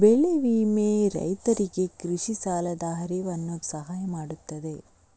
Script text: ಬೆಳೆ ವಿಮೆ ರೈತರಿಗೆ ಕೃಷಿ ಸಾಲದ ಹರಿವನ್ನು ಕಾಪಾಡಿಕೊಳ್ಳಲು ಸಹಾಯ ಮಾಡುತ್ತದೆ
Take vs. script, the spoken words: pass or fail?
fail